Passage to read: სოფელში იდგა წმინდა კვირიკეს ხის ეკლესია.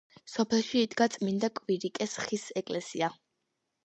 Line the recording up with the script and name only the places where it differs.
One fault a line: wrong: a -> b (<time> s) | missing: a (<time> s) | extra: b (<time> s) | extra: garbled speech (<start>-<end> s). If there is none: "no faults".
no faults